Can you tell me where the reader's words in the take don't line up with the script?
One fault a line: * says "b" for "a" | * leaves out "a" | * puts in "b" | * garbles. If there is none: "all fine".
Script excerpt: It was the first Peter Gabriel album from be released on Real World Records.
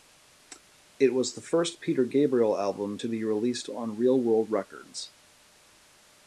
* says "to" for "from"